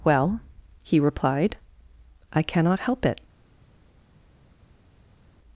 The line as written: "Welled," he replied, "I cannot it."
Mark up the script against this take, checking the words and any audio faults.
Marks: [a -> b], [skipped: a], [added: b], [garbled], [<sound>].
["Welled," -> Well] he replied, "I cannot [added: help] it."